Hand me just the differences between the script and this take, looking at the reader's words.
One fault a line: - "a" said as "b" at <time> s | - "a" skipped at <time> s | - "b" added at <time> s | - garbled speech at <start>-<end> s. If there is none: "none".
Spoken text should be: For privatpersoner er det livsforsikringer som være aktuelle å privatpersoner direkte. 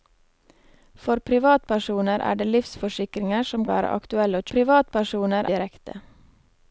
none